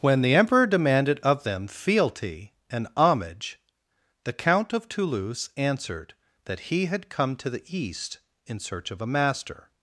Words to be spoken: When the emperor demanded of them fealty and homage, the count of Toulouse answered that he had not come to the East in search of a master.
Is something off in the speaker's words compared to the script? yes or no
yes